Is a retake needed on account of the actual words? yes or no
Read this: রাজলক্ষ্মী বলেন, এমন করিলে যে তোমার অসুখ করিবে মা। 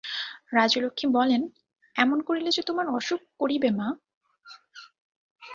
no